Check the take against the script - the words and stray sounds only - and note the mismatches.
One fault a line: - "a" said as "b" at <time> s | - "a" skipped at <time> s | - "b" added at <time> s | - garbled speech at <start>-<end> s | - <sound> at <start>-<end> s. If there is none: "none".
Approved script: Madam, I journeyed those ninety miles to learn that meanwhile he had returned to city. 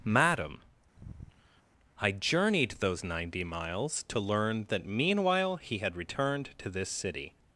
- sigh at 0.9-1.6 s
- "this" added at 6.7 s